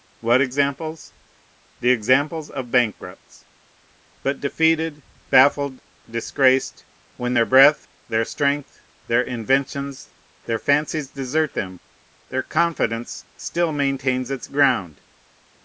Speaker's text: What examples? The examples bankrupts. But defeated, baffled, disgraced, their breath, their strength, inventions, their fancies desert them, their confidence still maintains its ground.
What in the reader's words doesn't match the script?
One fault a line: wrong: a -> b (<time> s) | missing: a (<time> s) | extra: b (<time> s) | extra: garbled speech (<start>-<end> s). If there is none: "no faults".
extra: of (2.5 s)
extra: when (7.2 s)
extra: their (9.1 s)